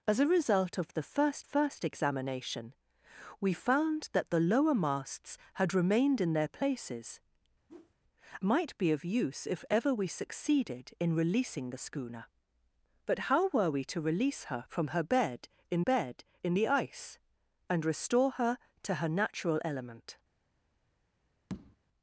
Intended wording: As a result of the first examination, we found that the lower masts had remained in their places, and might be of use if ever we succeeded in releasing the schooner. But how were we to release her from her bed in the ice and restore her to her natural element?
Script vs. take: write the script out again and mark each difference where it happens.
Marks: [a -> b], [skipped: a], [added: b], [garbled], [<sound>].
As a result of the first [added: first] examination, we found that the lower masts had remained in their places, [skipped: and] [whoosh] might be of use if ever we succeeded in releasing the schooner. But how were we to release her from her bed in [added: bed in] the ice and restore her to her natural element? [tap]